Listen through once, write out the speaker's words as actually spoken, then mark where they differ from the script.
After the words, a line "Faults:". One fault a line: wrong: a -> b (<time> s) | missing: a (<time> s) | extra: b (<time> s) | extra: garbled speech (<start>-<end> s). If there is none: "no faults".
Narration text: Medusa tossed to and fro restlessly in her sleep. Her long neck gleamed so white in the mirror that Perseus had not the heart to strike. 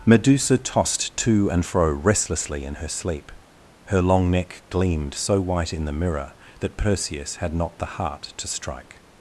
Medusa tossed to and fro restlessly in her sleep. Her long neck gleamed so white in the mirror that Perseus had not the heart to strike.
Faults:
no faults